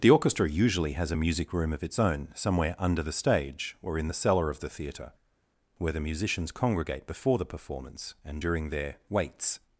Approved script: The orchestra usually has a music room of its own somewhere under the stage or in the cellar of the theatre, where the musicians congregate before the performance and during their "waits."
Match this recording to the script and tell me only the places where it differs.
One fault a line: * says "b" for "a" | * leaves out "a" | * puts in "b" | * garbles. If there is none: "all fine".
all fine